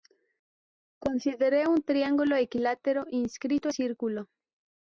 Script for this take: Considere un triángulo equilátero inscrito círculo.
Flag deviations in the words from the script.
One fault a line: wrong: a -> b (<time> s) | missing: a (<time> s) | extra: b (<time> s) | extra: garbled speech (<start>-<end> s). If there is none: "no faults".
no faults